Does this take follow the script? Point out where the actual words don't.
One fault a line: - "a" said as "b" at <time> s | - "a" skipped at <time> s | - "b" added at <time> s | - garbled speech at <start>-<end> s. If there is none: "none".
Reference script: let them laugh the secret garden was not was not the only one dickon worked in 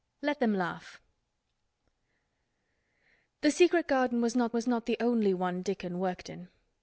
none